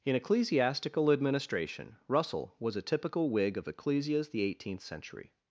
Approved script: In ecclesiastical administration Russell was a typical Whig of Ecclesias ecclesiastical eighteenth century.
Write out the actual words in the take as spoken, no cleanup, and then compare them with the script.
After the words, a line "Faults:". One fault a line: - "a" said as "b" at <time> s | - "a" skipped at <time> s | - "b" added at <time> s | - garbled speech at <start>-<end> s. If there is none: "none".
In ecclesiastical administration Russell was a typical Whig of Ecclesias the eighteenth century.
Faults:
- "ecclesiastical" said as "the" at 4.3 s